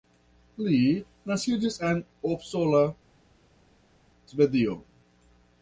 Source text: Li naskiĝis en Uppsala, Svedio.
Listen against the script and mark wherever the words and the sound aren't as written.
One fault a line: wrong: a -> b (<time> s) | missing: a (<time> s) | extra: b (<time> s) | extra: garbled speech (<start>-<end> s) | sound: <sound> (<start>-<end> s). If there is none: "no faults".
no faults